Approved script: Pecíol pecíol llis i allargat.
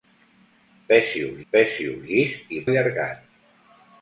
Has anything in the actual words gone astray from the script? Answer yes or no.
no